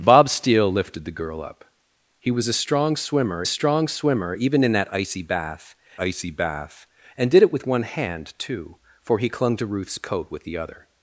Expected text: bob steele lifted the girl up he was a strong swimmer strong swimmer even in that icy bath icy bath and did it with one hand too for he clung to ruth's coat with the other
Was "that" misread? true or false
false